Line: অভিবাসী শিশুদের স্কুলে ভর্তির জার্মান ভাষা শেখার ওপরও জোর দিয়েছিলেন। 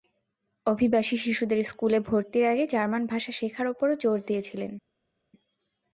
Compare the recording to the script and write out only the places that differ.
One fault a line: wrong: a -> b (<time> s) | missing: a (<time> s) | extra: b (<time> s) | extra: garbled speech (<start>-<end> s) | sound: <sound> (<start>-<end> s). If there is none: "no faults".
extra: আগে (2.5 s)